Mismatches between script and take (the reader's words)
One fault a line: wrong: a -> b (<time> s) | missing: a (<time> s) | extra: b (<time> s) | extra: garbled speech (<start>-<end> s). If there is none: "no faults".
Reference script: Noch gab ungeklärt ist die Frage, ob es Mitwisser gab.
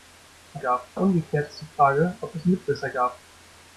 no faults